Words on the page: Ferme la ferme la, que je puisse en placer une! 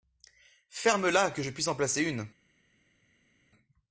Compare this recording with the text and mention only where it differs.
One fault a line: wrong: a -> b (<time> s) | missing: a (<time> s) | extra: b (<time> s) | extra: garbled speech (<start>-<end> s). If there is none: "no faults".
missing: ferme la (1.3 s)